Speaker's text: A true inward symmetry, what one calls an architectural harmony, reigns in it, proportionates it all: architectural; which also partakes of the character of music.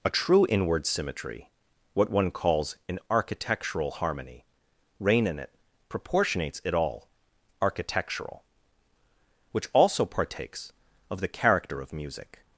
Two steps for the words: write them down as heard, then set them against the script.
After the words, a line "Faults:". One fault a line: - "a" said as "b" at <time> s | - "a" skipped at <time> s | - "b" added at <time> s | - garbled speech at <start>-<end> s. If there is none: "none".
A true inward symmetry, what one calls an architectural harmony, reign in it, proportionates it all: architectural; which also partakes of the character of music.
Faults:
- "reigns" said as "reign" at 5.0 s